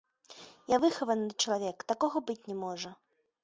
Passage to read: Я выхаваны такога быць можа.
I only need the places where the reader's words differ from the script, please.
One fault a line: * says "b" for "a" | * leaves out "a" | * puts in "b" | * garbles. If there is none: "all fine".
* puts in "чалавек"
* puts in "не"